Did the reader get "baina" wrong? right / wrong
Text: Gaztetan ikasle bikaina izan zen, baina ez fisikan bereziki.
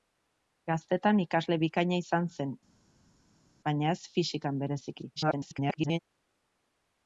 right